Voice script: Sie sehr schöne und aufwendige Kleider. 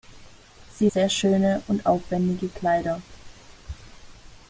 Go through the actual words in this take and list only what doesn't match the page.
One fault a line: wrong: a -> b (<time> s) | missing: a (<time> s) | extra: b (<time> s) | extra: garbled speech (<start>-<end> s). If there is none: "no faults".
no faults